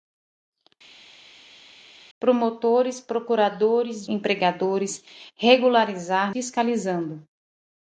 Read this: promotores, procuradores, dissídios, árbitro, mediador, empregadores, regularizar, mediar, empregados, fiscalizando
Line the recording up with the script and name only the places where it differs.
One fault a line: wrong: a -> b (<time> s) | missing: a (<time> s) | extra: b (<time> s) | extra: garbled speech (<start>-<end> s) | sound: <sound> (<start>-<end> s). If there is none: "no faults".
missing: dissídios árbitro mediador (4.1 s)
missing: mediar empregados (6.4 s)